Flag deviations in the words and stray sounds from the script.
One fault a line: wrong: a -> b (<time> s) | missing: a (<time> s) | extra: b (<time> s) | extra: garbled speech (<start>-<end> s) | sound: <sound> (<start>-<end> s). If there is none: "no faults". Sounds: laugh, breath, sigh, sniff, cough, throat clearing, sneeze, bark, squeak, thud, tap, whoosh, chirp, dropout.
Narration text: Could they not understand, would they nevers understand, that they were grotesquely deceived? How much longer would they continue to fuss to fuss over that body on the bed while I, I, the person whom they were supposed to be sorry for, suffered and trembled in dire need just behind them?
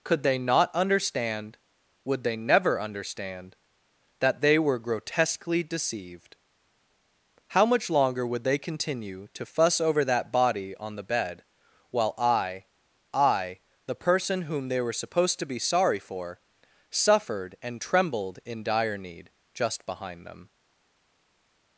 wrong: nevers -> never (2.4 s)
missing: to fuss (9.8 s)